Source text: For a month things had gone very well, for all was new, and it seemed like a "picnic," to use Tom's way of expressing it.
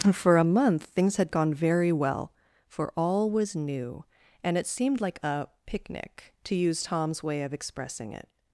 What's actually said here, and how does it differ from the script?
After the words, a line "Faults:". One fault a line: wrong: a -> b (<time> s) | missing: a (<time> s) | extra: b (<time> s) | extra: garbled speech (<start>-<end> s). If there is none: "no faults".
For a month things had gone very well, for all was new, and it seemed like a "picnic," to use Tom's way of expressing it.
Faults:
no faults